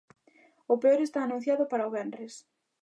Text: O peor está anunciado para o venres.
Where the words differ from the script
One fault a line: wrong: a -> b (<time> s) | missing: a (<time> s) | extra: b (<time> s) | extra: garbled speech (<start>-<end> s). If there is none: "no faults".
no faults